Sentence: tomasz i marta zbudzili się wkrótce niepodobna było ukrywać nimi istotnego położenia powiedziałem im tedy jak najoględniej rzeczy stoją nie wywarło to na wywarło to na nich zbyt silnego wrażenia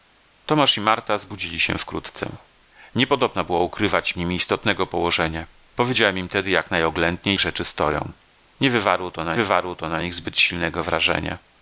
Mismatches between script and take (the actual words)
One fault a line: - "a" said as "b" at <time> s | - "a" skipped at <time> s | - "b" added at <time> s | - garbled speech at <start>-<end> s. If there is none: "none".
none